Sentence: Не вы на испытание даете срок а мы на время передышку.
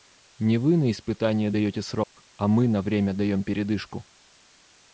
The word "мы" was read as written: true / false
true